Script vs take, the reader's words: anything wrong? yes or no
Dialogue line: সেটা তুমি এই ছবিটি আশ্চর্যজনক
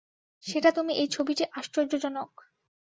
no